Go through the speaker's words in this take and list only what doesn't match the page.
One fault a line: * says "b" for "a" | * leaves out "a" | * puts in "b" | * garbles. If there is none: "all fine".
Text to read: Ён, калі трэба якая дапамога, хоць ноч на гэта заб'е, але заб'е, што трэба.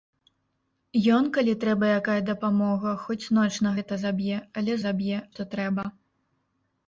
all fine